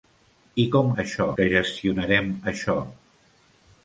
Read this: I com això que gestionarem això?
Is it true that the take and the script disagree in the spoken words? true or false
false